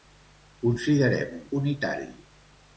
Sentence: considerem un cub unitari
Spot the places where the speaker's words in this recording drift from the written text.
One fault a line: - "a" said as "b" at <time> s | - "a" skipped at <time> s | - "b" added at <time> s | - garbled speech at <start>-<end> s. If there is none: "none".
- "cub" skipped at 1.4 s